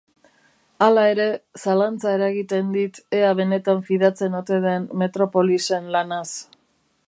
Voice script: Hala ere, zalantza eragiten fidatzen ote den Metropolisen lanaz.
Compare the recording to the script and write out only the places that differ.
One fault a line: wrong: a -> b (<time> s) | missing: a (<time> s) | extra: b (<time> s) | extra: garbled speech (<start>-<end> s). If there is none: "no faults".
extra: dit ea benetan (2.8 s)